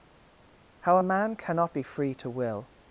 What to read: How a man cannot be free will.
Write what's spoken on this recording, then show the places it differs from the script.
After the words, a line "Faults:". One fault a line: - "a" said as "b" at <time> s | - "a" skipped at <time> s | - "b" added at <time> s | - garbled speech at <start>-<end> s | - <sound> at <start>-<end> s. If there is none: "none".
How a man cannot be free to will.
Faults:
- "to" added at 2.1 s